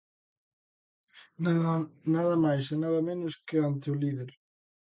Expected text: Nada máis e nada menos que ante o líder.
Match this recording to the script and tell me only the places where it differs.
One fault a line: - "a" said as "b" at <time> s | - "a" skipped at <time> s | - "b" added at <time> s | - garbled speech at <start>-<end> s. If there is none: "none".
none